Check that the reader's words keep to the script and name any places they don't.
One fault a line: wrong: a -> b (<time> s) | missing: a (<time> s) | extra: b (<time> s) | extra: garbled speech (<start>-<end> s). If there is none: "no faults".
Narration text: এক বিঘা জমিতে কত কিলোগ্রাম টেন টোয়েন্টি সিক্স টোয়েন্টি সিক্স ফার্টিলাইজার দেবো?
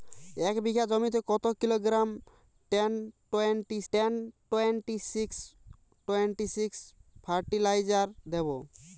extra: টেন টোয়েন্টি (3.9 s)